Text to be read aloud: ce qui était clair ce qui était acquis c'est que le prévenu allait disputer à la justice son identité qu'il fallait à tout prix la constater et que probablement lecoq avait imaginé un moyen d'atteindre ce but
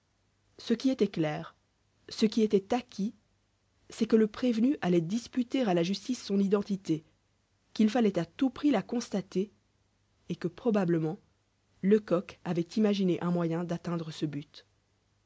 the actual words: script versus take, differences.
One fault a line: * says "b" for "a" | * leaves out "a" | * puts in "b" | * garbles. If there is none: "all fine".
all fine